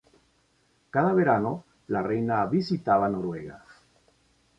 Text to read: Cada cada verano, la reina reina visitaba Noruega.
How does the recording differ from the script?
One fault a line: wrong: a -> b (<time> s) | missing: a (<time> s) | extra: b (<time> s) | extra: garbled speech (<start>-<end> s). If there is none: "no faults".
missing: cada (1.1 s)
missing: reina (2.5 s)